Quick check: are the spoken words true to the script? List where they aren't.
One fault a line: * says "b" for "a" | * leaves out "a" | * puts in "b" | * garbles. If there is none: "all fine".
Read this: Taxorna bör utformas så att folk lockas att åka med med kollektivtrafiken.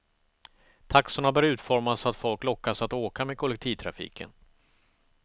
* leaves out "med"